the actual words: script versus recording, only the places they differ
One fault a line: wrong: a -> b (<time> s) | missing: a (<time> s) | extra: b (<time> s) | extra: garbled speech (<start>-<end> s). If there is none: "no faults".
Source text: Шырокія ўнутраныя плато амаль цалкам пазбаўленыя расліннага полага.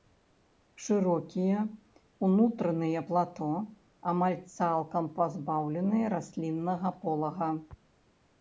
no faults